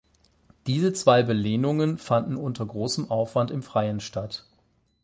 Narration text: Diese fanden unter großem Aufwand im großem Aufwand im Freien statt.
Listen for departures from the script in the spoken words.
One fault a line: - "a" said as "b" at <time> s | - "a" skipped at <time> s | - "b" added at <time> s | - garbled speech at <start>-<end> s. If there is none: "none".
- "zwei Belehnungen" added at 0.9 s
- "großem Aufwand im" skipped at 3.6 s